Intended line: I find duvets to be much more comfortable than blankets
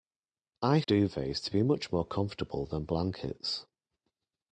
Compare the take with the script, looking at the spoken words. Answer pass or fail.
fail